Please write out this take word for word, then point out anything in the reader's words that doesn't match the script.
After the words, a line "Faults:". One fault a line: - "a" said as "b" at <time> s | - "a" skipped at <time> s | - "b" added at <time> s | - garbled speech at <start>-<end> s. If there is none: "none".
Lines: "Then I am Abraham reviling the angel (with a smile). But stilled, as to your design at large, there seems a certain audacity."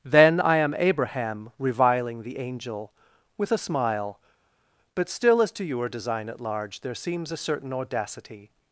"Then I am Abraham reviling the angel (with a smile). But still, as to your design at large, there seems a certain audacity."
Faults:
- "stilled" said as "still" at 5.1 s